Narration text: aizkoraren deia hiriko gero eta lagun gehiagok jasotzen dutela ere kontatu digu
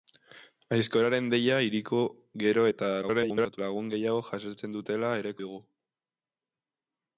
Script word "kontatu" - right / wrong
wrong